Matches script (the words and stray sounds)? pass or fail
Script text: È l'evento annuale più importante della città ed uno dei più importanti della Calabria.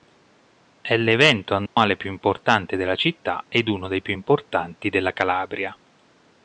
fail